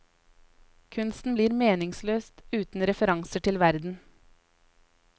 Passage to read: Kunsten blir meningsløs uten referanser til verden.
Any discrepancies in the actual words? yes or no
no